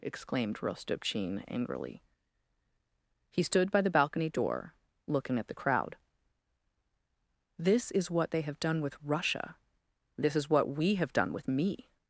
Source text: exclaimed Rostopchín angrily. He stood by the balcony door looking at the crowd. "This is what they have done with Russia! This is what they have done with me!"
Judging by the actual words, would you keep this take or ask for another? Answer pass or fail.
fail